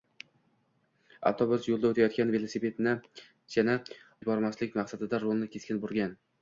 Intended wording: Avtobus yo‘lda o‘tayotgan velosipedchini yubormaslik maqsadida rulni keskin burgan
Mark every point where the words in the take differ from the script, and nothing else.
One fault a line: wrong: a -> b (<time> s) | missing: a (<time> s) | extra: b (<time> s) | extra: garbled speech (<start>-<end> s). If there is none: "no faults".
no faults